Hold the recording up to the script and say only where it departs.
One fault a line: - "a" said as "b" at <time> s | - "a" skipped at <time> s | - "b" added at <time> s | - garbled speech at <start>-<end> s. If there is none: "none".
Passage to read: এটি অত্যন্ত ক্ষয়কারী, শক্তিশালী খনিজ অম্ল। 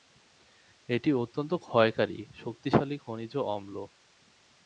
none